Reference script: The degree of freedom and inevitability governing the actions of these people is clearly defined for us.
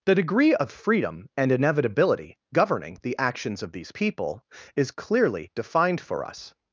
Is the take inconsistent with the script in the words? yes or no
no